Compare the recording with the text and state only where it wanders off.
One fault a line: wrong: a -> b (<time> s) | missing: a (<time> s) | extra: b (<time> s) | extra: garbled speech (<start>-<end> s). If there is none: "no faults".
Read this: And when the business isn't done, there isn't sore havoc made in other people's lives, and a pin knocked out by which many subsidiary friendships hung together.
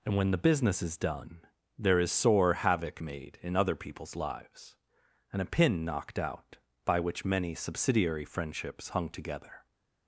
wrong: isn't -> is (0.8 s)
wrong: isn't -> is (2.0 s)